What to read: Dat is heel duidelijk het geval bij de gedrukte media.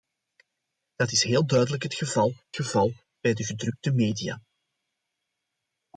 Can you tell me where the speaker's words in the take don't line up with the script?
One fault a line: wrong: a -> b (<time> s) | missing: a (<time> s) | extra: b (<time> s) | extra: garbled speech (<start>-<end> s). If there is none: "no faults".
extra: geval (2.5 s)